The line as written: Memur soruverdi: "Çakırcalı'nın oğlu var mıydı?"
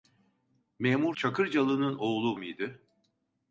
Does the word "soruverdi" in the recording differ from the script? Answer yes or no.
yes